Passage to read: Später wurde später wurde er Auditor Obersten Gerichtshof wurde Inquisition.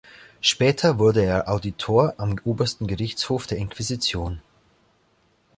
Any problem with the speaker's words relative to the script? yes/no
yes